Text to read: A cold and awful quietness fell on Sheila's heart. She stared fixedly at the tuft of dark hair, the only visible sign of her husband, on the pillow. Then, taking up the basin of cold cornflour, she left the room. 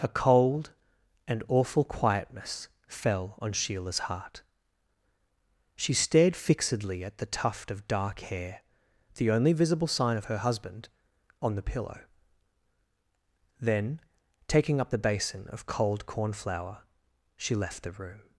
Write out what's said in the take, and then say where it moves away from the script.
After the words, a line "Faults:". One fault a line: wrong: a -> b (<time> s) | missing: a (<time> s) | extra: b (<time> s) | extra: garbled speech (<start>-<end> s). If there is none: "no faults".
A cold and awful quietness fell on Sheila's heart. She stared fixedly at the tuft of dark hair, the only visible sign of her husband, on the pillow. Then, taking up the basin of cold cornflour, she left the room.
Faults:
no faults